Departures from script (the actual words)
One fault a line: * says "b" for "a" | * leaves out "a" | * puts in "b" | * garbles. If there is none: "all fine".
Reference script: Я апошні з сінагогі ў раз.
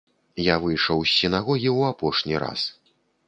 * says "выйшаў" for "апошні"
* puts in "апошні"